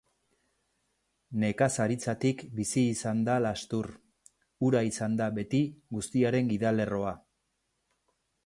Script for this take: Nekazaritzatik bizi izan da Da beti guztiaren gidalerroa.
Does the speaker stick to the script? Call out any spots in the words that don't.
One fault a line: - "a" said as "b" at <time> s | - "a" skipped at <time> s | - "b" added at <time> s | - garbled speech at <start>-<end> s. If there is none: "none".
- "Lastur ura izan" added at 3.5 s